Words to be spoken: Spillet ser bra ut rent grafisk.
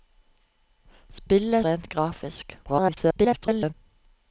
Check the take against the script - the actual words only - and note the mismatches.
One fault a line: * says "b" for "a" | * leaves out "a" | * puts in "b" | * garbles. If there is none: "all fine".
* leaves out "ser bra ut"
* garbles